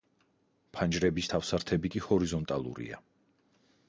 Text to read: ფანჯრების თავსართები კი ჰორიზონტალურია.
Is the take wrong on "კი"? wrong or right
right